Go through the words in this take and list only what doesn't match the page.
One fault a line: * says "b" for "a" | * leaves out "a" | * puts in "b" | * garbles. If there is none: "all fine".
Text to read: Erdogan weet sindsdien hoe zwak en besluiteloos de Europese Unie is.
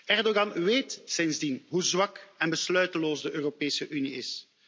all fine